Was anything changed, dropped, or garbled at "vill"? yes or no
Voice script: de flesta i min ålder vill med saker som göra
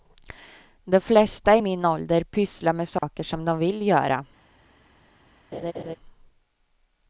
yes